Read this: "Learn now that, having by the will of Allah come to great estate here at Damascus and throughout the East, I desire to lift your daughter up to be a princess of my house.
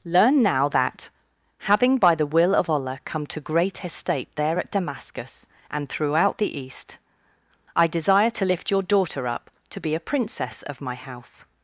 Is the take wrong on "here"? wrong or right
wrong